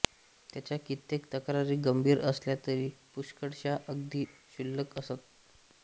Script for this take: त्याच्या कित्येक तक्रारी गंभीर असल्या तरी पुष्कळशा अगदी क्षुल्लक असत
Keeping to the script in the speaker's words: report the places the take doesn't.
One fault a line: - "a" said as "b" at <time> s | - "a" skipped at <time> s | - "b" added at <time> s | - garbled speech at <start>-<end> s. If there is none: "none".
none